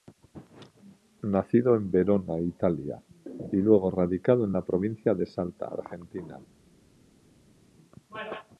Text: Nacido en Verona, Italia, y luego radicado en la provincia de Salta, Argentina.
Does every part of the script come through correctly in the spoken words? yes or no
yes